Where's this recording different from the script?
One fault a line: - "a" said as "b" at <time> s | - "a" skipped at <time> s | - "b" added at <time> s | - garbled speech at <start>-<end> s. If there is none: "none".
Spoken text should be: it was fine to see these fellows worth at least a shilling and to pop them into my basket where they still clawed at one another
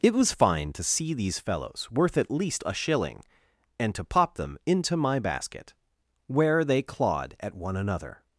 - "still" skipped at 6.8 s